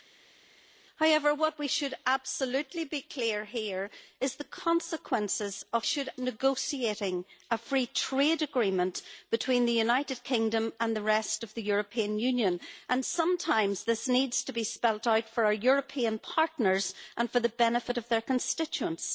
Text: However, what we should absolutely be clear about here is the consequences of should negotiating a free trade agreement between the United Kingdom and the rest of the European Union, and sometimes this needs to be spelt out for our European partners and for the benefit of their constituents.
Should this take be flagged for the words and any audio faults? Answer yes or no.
no